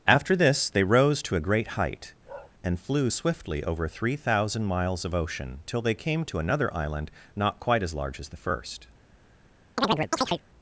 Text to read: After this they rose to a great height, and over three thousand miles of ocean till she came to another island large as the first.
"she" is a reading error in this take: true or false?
true